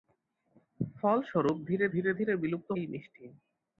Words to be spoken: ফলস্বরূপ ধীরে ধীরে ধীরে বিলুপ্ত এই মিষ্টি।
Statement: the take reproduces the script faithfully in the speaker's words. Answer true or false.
true